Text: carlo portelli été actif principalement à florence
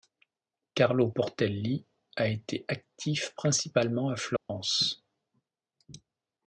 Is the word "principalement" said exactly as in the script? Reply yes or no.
yes